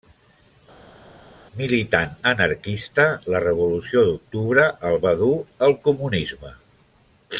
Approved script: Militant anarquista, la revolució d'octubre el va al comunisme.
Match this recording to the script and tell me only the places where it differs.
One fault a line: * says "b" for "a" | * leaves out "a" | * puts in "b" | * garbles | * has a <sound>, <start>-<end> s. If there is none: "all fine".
* puts in "dur"